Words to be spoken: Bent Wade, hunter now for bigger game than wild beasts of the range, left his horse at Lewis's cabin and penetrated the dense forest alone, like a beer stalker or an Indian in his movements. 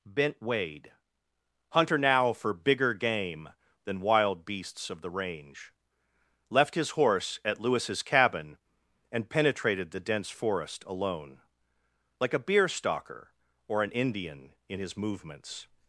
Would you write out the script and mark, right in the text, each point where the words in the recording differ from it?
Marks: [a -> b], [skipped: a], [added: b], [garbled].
Bent Wade, hunter now for bigger game than wild beasts of the range, left his horse at Lewis's cabin and penetrated the dense forest alone, like a beer stalker or an Indian in his movements.